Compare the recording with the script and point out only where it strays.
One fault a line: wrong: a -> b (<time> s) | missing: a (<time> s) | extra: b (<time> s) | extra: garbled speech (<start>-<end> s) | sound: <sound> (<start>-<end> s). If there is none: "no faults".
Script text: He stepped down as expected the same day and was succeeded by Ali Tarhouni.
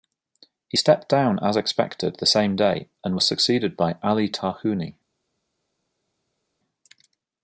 no faults